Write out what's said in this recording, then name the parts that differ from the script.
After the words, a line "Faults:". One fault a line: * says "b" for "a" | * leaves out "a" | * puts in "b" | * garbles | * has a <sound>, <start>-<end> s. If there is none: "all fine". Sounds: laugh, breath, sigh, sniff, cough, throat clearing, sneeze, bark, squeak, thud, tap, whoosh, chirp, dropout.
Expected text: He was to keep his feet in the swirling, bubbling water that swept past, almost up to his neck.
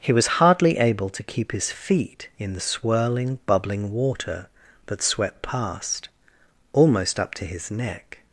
He was hardly able to keep his feet in the swirling, bubbling water that swept past, almost up to his neck.
Faults:
* puts in "hardly able"